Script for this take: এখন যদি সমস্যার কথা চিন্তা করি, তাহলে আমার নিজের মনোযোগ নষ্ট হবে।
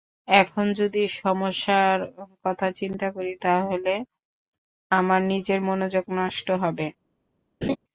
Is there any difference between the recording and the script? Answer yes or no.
no